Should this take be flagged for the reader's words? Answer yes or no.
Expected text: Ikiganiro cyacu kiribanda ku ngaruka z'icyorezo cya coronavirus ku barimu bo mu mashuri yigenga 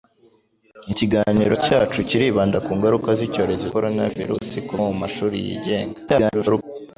yes